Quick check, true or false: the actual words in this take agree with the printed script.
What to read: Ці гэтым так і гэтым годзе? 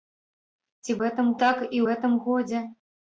true